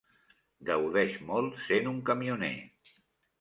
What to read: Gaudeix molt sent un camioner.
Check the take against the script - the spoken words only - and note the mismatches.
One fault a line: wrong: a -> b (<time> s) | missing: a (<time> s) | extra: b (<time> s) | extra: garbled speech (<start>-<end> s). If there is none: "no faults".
no faults